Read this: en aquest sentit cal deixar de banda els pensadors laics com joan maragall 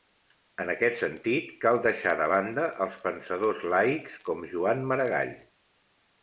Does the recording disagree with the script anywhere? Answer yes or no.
no